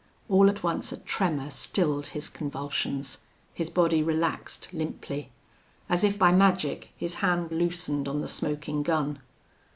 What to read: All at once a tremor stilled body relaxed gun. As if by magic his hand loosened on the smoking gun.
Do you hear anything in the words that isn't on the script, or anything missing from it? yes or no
yes